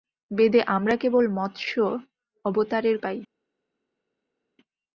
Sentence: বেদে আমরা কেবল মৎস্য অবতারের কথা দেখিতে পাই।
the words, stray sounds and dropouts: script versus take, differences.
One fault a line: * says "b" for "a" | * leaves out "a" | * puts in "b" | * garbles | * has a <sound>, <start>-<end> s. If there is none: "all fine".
* leaves out "কথা দেখিতে"